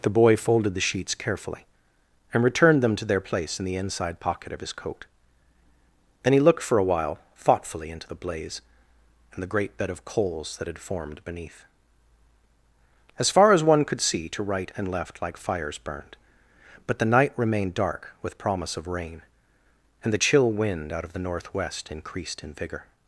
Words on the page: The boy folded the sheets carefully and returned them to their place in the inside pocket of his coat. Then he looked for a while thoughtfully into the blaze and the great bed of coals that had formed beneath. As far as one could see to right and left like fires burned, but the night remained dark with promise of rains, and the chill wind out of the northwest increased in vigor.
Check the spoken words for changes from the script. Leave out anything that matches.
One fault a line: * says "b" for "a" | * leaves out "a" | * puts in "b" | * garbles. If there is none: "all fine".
* says "rain" for "rains"